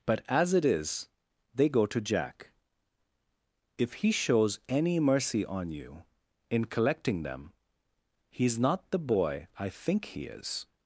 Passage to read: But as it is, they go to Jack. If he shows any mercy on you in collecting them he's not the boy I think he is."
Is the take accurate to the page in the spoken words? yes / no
yes